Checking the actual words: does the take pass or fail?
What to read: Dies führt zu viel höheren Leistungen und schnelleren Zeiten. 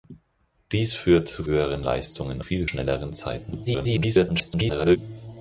fail